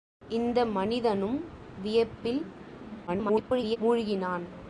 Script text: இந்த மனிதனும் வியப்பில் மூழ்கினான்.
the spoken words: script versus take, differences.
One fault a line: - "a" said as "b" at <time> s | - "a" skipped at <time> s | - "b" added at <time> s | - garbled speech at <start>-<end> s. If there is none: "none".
- garbled speech at 3.1-3.8 s